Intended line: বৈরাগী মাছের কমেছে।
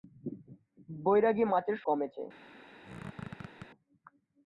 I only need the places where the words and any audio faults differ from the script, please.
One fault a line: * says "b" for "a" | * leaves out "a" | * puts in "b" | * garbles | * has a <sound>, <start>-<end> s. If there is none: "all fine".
* has a squeak, 2.8-3.7 s